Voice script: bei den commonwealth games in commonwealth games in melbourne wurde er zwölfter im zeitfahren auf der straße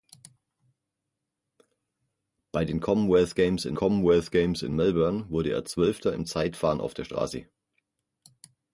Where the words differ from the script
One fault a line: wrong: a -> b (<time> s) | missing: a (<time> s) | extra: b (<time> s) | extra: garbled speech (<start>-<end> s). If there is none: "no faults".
no faults